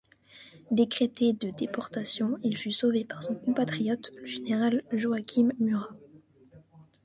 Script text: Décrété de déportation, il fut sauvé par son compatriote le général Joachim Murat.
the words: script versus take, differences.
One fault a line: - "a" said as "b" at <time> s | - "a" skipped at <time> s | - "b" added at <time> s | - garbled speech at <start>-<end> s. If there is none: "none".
none